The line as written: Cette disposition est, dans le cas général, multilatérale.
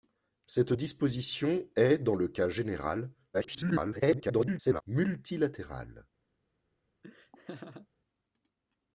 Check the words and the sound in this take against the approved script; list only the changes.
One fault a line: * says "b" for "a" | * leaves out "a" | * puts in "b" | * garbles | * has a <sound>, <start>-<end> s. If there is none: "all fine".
* garbles
* has a laugh, 7.0-7.9 s